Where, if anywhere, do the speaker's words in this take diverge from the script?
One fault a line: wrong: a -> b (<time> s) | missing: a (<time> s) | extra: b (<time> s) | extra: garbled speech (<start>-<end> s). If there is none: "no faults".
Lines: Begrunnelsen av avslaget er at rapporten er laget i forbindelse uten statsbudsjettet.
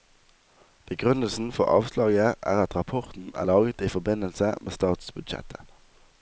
wrong: av -> for (1.5 s)
wrong: uten -> med (4.6 s)